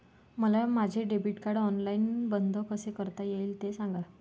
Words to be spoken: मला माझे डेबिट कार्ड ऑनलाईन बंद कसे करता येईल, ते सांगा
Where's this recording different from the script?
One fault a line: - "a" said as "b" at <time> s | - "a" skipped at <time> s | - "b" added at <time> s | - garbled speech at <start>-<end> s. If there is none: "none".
none